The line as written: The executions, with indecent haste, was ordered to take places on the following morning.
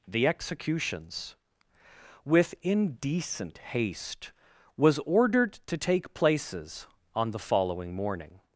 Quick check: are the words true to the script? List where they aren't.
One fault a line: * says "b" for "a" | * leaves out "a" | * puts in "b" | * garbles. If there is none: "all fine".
all fine